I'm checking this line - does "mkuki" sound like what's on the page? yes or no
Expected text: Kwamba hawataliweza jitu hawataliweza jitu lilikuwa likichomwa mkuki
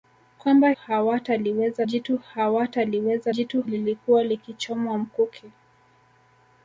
yes